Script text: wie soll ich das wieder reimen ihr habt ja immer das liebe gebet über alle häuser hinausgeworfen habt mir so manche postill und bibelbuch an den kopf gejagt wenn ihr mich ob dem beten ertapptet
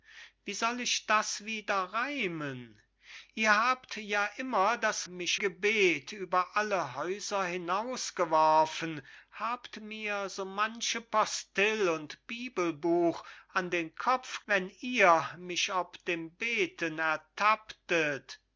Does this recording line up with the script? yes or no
no